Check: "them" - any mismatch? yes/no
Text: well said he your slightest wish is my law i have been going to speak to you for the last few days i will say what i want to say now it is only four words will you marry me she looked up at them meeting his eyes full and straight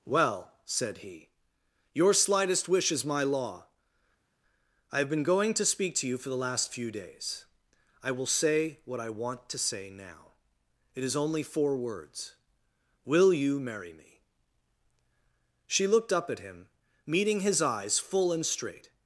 yes